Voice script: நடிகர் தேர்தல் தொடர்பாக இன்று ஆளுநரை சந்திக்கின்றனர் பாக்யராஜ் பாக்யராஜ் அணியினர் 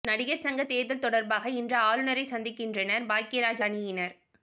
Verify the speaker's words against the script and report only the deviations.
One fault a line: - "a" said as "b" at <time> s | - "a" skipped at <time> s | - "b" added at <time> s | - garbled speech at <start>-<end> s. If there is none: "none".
- "சங்க" added at 0.4 s
- "பாக்யராஜ்" skipped at 3.6 s